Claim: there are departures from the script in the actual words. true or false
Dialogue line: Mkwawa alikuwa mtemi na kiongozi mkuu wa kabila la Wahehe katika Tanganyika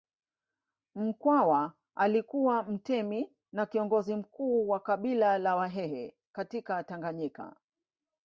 false